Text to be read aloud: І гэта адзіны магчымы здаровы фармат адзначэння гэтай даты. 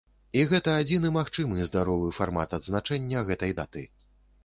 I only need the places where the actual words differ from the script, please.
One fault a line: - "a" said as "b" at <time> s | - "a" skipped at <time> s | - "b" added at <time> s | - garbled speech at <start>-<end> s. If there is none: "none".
none